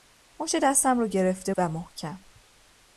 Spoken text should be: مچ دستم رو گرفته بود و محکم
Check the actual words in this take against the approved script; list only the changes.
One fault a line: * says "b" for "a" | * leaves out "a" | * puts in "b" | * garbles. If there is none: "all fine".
* leaves out "بود"